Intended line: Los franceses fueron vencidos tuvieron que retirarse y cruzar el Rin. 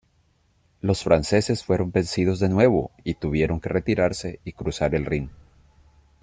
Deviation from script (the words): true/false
true